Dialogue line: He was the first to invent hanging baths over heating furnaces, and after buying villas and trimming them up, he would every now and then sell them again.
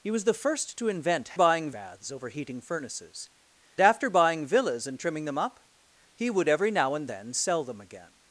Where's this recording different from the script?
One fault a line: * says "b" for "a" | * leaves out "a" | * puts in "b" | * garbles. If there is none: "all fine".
* says "buying" for "hanging"
* leaves out "and"